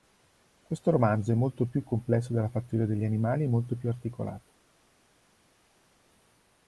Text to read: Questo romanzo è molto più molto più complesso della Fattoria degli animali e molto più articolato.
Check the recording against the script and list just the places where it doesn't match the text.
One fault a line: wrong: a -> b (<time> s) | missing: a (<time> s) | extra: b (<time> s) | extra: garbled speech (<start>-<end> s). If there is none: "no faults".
missing: molto più (1.8 s)